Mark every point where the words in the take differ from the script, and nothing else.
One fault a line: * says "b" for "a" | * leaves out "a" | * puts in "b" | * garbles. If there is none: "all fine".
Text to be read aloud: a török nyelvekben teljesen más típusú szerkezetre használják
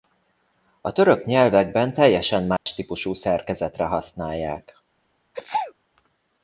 all fine